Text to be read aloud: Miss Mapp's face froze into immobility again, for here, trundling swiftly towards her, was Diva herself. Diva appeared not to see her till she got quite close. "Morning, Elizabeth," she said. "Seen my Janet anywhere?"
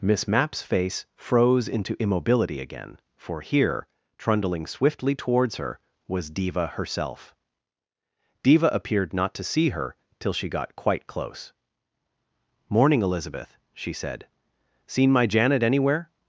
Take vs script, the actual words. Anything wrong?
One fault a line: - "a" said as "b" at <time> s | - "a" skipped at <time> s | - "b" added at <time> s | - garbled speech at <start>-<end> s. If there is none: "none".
none